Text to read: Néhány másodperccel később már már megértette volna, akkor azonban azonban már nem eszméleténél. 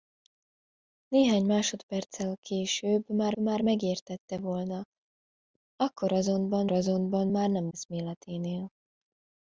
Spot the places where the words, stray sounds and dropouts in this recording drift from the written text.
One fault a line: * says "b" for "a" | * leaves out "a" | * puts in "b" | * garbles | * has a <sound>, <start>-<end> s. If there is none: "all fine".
all fine